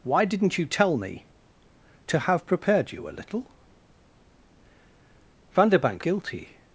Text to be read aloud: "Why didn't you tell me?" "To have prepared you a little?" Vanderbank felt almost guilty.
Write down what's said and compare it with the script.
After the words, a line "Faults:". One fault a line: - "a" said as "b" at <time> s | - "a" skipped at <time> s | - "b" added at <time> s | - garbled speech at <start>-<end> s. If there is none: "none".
"Why didn't you tell me?" "To have prepared you a little?" Vanderbank guilty.
Faults:
- "felt almost" skipped at 6.0 s